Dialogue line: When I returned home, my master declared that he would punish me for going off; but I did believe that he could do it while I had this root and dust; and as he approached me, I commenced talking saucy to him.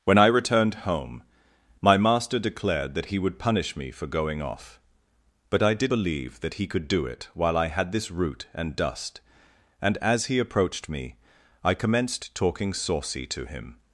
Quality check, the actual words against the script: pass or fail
pass